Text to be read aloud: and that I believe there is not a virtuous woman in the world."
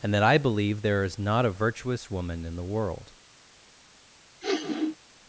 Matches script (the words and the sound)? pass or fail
fail